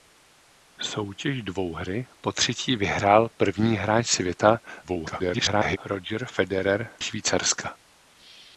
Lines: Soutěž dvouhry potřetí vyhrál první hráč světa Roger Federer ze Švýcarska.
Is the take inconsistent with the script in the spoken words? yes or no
yes